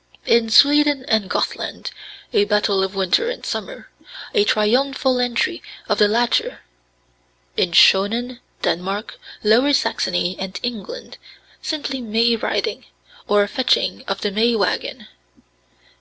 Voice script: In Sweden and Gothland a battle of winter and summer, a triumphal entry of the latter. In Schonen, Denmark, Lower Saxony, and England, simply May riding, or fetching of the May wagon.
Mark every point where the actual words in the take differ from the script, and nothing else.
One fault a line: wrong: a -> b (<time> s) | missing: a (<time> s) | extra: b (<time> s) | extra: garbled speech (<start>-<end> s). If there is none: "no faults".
no faults